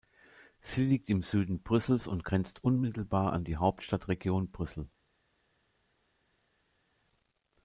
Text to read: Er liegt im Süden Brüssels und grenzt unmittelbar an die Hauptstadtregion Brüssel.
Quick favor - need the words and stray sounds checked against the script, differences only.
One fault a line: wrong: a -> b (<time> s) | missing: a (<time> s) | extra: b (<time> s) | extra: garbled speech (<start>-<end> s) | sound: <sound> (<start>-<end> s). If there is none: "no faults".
wrong: Er -> Sie (0.6 s)